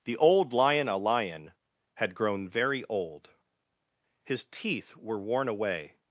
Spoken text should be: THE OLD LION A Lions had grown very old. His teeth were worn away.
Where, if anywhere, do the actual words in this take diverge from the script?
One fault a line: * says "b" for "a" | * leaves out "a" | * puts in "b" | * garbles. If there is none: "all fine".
* says "Lion" for "Lions"